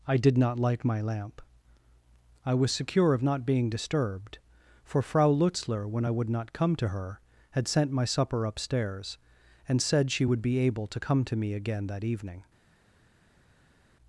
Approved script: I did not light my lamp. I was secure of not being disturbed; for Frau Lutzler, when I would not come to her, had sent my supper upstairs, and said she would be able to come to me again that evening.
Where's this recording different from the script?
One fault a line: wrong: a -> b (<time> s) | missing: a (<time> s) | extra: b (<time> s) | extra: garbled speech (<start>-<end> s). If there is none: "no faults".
no faults